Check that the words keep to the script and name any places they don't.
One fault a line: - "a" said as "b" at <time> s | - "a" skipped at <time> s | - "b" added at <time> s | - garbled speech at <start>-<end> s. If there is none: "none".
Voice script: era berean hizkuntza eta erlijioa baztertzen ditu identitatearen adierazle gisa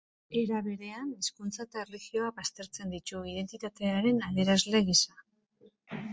none